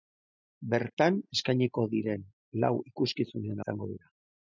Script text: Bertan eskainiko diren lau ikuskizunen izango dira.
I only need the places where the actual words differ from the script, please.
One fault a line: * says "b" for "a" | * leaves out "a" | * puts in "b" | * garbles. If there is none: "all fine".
all fine